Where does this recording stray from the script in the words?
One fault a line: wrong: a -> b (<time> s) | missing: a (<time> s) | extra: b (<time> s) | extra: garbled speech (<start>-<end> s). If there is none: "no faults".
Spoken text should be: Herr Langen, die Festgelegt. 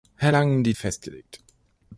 no faults